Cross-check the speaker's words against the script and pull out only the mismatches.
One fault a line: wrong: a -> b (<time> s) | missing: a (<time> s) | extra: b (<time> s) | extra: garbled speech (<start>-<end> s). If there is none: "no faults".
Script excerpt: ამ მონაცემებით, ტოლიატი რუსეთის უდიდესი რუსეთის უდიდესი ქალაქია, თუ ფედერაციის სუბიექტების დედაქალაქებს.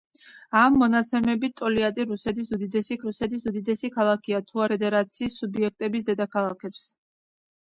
no faults